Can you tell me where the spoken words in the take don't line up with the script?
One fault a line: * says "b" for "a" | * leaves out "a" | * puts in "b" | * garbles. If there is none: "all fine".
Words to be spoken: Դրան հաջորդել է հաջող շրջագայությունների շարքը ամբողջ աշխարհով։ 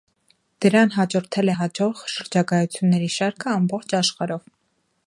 all fine